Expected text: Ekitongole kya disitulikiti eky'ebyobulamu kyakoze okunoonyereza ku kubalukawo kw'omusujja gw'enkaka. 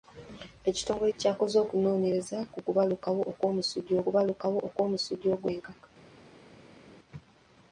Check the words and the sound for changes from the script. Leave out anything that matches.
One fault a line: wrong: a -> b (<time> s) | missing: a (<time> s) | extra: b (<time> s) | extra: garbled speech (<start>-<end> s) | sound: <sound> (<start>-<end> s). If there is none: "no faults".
missing: kya disitulikiti eky'ebyobulamu (1.1 s)
extra: kubalukawo kw'omusujja (4.0 s)